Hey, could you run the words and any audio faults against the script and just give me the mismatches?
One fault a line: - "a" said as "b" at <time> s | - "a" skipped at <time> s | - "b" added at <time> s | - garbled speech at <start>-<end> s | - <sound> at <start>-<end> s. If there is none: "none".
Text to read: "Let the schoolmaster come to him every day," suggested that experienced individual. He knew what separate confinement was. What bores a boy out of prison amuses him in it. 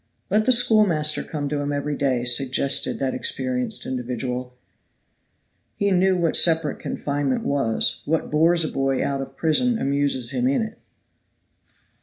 none